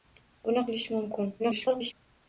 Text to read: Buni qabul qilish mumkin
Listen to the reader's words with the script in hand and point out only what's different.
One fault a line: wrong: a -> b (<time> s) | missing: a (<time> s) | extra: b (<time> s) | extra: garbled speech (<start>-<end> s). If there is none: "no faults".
missing: qabul (0.6 s)
extra: garbled speech (1.4-1.9 s)